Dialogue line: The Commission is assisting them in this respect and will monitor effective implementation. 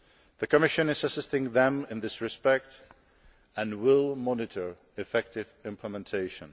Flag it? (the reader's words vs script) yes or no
no